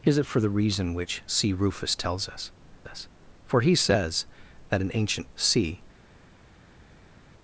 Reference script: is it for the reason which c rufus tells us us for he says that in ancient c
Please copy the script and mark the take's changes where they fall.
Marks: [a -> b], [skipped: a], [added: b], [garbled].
is it for the reason which c rufus tells us us for he says that in ancient c